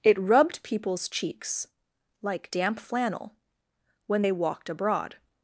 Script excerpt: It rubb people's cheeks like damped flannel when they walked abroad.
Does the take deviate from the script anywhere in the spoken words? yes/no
yes